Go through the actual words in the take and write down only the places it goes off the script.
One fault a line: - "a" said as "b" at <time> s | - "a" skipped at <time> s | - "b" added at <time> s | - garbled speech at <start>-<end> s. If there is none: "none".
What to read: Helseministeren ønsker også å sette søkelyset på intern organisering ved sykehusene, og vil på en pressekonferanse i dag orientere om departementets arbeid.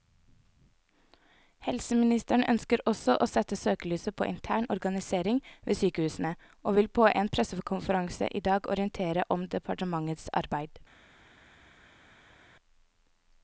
none